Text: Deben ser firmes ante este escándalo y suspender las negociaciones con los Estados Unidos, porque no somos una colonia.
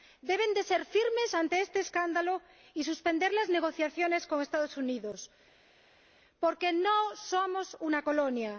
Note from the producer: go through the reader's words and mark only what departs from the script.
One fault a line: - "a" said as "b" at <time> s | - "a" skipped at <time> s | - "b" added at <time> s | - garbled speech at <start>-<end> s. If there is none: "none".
none